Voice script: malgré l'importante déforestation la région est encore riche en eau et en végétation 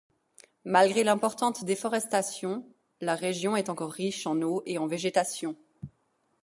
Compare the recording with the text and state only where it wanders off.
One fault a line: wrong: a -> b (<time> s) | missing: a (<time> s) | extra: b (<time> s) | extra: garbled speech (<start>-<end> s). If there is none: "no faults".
no faults